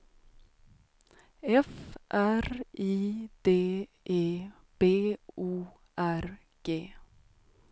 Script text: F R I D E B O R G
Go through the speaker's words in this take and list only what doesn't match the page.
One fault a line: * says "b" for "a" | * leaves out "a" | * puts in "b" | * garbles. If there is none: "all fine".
all fine